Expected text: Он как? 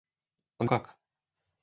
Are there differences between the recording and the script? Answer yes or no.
no